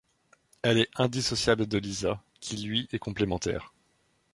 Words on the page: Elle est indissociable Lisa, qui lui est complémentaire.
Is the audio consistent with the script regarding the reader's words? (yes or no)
no